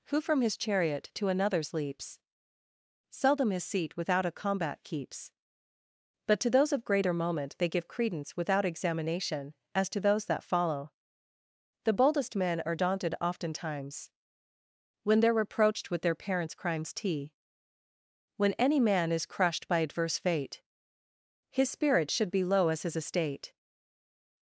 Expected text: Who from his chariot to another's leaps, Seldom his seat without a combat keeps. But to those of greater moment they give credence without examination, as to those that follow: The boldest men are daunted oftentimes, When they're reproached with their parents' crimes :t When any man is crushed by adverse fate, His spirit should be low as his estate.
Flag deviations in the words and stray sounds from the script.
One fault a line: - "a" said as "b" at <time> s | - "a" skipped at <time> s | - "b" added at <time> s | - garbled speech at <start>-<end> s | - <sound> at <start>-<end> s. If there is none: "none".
none